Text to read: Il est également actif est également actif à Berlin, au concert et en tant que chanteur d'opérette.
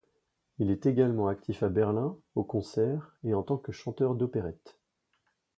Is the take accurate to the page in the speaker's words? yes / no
no